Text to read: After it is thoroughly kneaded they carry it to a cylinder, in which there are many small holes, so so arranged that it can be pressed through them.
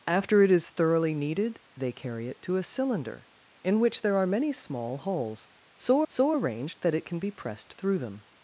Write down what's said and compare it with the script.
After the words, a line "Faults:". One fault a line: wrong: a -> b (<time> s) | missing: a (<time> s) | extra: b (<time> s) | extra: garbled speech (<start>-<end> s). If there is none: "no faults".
After it is thoroughly kneaded they carry it to a cylinder, in which there are many small holes, so so arranged that it can be pressed through them.
Faults:
no faults